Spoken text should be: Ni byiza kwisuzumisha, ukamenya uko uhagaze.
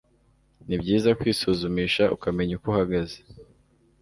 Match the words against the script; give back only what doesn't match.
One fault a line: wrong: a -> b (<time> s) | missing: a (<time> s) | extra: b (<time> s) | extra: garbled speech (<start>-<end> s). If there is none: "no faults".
no faults